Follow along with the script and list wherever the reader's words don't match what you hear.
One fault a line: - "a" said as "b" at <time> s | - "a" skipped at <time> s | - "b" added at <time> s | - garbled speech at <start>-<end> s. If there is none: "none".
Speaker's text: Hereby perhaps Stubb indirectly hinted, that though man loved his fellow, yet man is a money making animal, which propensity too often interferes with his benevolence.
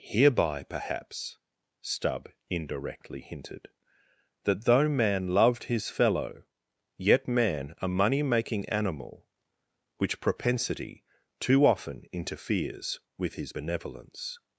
- "is" skipped at 7.7 s